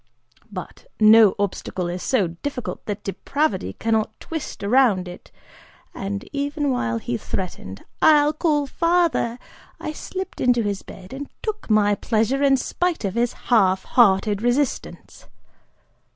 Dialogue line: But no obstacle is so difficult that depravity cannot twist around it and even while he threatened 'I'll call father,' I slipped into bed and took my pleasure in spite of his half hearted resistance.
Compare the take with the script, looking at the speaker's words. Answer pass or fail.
fail